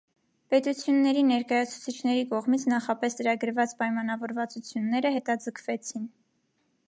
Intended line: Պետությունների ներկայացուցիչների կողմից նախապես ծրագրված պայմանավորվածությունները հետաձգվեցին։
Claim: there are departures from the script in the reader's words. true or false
false